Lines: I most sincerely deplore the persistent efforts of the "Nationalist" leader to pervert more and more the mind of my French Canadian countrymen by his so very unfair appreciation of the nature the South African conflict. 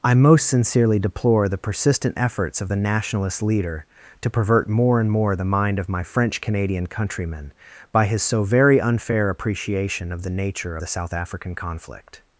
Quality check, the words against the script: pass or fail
pass